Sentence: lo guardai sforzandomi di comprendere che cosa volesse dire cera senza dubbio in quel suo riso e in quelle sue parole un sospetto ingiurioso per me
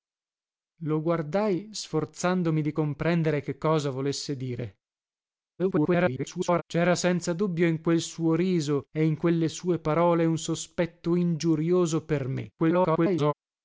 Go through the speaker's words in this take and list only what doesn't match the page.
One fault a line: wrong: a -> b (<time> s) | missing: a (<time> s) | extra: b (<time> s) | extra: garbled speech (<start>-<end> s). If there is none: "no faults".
extra: garbled speech (5.6-6.6 s)
extra: garbled speech (12.6-13.3 s)